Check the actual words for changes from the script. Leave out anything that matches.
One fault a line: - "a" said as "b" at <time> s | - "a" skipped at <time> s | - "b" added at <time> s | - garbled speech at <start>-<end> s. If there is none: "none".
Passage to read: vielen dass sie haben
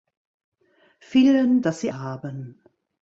none